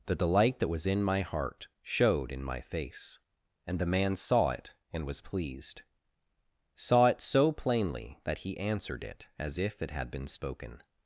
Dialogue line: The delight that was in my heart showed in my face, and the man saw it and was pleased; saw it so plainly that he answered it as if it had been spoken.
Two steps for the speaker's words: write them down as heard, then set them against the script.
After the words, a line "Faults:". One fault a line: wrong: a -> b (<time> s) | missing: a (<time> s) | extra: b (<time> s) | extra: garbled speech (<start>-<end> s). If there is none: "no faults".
The delight that was in my heart showed in my face, and the man saw it and was pleased; saw it so plainly that he answered it as if it had been spoken.
Faults:
no faults